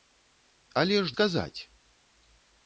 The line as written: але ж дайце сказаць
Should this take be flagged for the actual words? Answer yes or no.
yes